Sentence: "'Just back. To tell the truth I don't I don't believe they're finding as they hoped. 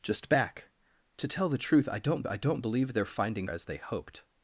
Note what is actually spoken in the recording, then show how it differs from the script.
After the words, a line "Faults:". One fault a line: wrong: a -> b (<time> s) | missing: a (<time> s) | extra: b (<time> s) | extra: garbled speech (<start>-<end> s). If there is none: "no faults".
"'Just back. To tell the truth I don't I don't believe they're finding as they hoped.
Faults:
no faults